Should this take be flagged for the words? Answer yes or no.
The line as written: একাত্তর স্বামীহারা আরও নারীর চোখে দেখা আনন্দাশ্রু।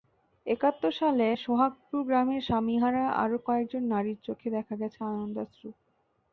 yes